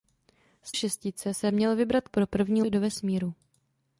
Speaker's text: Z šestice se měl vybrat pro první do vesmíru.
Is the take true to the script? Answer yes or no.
yes